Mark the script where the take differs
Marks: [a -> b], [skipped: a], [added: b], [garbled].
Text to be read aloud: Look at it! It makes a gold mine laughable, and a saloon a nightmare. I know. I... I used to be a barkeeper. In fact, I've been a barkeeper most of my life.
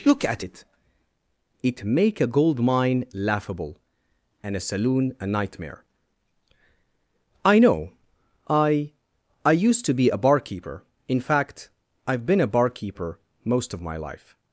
Look at it! It [makes -> make] a gold mine laughable, and a saloon a nightmare. I know. I... I used to be a barkeeper. In fact, I've been a barkeeper most of my life.